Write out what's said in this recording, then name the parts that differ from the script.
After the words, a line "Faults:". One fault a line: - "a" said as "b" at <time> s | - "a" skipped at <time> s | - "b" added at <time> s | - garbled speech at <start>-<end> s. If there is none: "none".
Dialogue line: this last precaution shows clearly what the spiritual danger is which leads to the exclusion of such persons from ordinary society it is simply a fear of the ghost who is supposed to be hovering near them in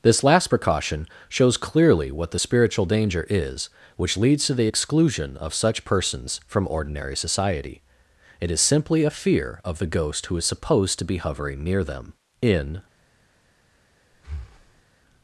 this last precaution shows clearly what the spiritual danger is which leads to the exclusion of such persons from ordinary society it is simply a fear of the ghost who is supposed to be hovering near them in
Faults:
none